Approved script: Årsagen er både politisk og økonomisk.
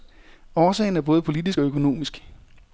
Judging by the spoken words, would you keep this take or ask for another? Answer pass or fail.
pass